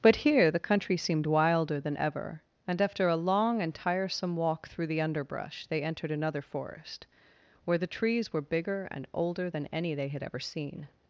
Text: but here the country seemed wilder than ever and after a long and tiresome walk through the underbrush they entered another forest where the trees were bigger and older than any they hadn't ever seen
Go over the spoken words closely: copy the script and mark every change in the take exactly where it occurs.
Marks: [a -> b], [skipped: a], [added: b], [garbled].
but here the country seemed wilder than ever and after a long and tiresome walk through the underbrush they entered another forest where the trees were bigger and older than any they [hadn't -> had] ever seen